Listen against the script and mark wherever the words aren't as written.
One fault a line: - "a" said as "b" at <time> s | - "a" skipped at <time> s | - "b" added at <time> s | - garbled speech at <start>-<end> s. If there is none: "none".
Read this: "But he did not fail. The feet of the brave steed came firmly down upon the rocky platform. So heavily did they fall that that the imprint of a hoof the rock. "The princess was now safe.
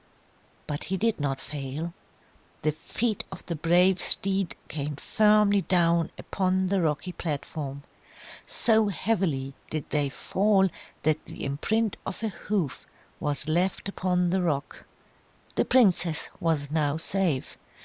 - "that" skipped at 11.2 s
- "was left upon" added at 13.2 s